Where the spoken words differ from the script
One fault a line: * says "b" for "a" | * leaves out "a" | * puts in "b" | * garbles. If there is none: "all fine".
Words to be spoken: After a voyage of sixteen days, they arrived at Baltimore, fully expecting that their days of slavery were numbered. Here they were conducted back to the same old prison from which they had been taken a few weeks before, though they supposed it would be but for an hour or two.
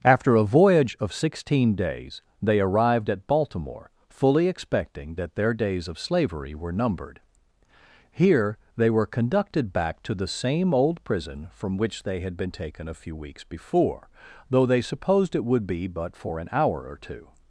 all fine